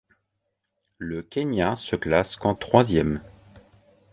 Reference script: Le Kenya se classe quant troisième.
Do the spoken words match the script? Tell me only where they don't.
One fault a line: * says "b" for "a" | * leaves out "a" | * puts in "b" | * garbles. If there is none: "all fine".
all fine